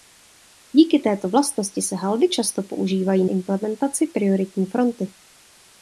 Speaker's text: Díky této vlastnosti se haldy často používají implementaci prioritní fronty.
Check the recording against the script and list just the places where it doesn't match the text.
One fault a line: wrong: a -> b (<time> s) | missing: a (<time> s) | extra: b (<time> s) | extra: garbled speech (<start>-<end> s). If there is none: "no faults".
no faults